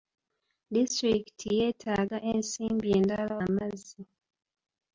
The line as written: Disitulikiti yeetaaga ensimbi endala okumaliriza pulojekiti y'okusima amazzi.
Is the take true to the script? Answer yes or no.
no